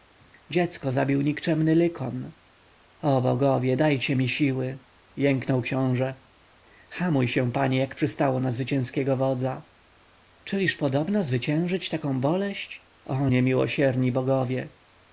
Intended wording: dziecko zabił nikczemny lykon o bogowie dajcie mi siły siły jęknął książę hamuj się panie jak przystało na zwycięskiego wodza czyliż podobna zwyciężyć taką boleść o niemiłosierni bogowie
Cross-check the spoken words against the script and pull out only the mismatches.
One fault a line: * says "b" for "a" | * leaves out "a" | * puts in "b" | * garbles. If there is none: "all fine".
* leaves out "siły"